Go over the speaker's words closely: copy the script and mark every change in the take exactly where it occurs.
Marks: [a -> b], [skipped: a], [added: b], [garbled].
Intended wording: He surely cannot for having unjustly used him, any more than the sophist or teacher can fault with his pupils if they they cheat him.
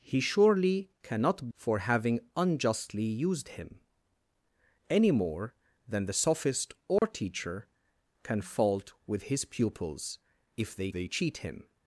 He surely cannot for having unjustly used him, any more than the sophist or teacher can fault with his pupils if they they cheat him.